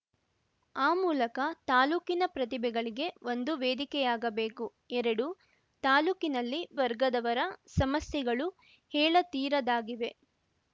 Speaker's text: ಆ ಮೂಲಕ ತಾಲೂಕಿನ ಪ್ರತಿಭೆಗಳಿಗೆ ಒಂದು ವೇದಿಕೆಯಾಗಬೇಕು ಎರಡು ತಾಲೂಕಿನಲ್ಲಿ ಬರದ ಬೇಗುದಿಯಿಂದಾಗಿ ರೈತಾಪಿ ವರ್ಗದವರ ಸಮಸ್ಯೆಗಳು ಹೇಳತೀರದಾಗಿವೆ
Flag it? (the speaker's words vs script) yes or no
yes